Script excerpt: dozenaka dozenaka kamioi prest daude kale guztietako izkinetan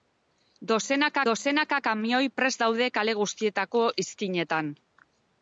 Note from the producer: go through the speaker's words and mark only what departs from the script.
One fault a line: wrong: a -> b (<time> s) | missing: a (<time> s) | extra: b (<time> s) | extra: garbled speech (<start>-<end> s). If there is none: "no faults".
no faults